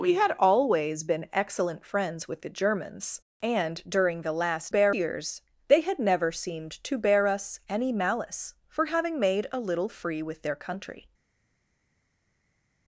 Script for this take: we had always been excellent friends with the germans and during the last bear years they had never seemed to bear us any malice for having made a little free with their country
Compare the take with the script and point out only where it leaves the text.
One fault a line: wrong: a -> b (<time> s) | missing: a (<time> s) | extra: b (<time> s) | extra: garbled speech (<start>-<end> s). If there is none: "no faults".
no faults